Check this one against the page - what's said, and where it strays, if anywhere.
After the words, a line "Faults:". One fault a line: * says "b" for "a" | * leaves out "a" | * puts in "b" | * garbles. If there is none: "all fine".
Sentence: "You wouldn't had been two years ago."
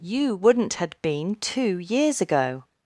"You wouldn't had been two years ago."
Faults:
all fine